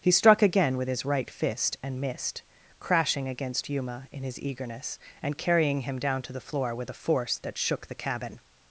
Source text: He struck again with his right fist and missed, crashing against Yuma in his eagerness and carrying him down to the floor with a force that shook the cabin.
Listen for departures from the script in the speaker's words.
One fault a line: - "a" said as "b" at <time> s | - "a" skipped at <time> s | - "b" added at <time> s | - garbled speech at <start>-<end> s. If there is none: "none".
none